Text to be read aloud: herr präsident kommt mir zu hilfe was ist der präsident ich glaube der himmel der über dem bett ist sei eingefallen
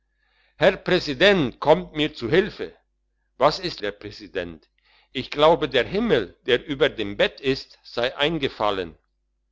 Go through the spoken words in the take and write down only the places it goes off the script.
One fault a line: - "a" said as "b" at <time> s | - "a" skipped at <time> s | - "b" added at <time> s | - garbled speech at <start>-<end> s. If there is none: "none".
none